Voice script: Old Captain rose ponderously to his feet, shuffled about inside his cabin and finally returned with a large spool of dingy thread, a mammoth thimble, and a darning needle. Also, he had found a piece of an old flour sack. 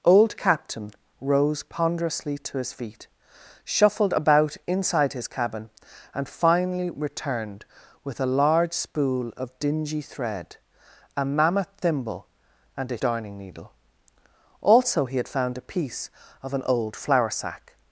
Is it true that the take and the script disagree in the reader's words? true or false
false